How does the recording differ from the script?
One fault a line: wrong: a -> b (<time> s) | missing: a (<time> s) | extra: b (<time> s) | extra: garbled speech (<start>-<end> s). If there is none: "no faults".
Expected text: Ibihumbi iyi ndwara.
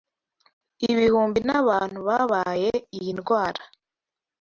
extra: n'abantu babaye (1.5 s)